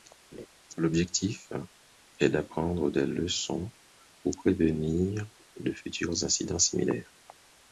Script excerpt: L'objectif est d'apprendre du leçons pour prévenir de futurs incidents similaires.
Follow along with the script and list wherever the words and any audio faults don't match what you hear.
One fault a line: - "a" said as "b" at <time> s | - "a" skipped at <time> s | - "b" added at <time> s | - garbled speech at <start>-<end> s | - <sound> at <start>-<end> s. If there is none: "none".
- laugh at 0.3-0.5 s
- "du" said as "des" at 2.9 s